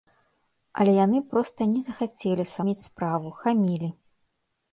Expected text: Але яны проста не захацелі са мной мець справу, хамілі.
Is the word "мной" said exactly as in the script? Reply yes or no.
no